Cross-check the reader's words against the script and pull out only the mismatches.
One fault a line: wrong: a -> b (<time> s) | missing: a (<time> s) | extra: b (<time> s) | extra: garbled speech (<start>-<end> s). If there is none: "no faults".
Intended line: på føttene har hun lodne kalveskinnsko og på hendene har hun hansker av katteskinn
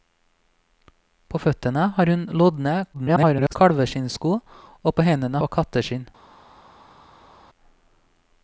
extra: garbled speech (2.9-3.6 s)
missing: har hun hansker (5.4 s)